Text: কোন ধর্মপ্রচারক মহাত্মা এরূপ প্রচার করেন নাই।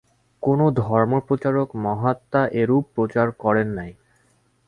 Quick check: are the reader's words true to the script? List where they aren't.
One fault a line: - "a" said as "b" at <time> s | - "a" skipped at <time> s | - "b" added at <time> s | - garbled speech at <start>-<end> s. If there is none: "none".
none